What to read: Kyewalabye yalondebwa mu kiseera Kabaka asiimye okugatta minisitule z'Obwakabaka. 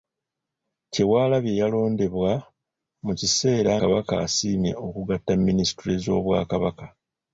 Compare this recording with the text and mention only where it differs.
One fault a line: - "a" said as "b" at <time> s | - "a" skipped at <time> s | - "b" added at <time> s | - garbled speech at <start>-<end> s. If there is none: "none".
none